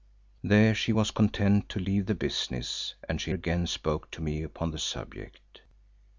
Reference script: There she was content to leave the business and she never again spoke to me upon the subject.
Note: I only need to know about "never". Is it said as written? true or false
false